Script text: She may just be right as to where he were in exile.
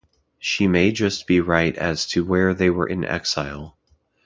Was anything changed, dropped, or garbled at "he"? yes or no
yes